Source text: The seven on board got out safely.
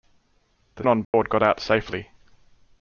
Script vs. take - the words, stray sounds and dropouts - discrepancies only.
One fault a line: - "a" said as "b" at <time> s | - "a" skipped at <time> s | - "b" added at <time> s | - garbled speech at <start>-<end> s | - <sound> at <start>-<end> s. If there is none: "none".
- "seven" skipped at 0.8 s
- dropout at 1.0-1.1 s